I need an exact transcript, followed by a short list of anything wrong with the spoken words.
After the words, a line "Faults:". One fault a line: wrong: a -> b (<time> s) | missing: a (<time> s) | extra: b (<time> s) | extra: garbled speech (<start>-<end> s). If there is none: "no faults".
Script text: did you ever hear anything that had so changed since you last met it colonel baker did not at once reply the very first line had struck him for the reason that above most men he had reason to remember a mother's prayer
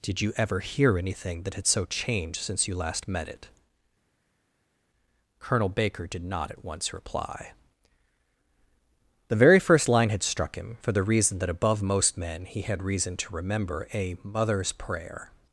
did you ever hear anything that had so changed since you last met it colonel baker did not at once reply the very first line had struck him for the reason that above most men he had reason to remember a mother's prayer
Faults:
no faults